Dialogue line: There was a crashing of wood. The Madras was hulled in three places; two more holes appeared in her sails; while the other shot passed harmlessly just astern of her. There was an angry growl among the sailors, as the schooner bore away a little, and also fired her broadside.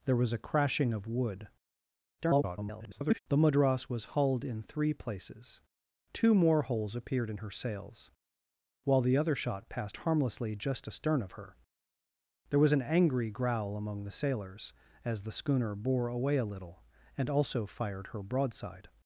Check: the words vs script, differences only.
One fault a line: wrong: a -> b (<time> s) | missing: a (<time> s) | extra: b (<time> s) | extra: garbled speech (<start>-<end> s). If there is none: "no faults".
extra: garbled speech (2.2-3.2 s)